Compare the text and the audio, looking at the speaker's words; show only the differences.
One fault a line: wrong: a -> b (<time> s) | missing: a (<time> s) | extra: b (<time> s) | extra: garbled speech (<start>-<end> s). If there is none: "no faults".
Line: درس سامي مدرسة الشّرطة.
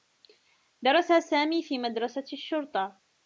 extra: في (1.6 s)